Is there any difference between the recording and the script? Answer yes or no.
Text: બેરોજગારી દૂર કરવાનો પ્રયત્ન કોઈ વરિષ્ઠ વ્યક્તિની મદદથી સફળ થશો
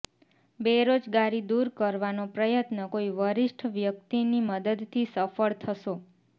no